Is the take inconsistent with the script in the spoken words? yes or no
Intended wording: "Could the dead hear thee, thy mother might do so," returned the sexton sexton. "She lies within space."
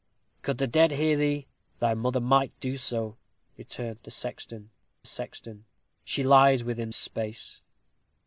no